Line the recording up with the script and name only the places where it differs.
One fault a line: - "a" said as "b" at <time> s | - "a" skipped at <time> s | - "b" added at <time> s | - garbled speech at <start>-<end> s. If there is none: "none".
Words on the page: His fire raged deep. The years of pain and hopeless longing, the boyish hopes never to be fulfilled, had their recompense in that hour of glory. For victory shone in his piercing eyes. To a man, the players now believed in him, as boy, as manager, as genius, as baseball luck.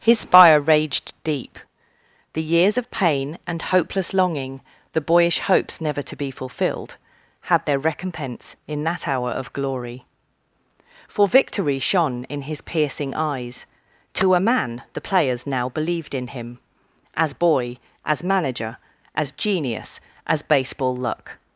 none